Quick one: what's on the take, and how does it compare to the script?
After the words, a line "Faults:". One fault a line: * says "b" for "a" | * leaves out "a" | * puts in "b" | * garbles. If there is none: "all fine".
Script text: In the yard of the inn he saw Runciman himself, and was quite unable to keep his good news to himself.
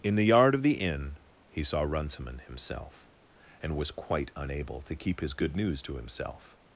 In the yard of the inn he saw Runciman himself, and was quite unable to keep his good news to himself.
Faults:
all fine